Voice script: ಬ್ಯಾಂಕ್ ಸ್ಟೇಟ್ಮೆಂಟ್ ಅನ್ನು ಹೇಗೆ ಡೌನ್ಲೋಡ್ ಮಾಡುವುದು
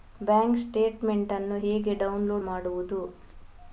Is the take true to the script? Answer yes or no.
yes